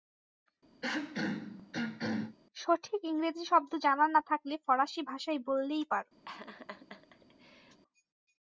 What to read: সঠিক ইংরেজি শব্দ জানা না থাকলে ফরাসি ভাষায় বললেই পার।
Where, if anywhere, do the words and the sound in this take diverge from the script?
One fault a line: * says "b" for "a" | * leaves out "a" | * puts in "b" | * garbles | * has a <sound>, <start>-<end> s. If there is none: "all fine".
* has a throat clearing, 0.8-2.4 s
* has a laugh, 6.3-7.8 s